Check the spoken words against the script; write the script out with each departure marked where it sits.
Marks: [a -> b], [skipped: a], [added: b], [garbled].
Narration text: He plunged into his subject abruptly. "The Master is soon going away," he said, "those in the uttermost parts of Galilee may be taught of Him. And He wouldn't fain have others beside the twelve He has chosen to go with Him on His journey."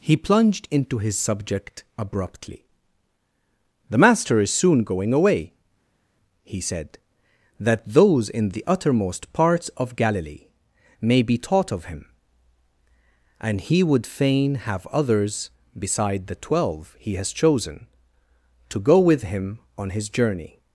He plunged into his subject abruptly. "The Master is soon going away," he said, [added: that] "those in the uttermost parts of Galilee may be taught of Him. And He [wouldn't -> would] fain have others beside the twelve He has chosen to go with Him on His journey."